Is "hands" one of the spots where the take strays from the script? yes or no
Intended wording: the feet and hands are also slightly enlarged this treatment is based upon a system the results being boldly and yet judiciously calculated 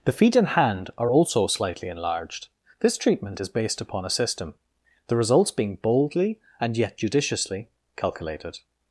yes